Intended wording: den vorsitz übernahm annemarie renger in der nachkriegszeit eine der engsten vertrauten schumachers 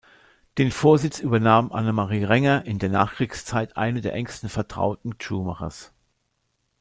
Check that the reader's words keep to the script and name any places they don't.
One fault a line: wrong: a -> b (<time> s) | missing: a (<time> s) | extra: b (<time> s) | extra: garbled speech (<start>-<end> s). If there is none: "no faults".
no faults